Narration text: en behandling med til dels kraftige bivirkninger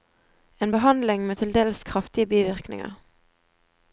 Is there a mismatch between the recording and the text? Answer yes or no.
no